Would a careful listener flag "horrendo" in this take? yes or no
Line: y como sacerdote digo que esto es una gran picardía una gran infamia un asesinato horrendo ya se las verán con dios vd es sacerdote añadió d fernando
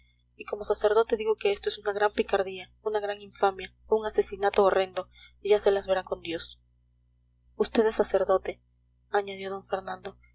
no